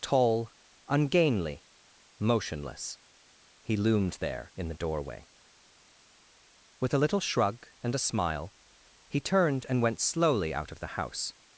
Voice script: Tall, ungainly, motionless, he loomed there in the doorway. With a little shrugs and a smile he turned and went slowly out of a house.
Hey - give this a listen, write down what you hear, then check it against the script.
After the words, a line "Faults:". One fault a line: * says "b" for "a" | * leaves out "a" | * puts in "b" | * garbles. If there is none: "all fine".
Tall, ungainly, motionless, he loomed there in the doorway. With a little shrug and a smile he turned and went slowly out of the house.
Faults:
* says "shrug" for "shrugs"
* says "the" for "a"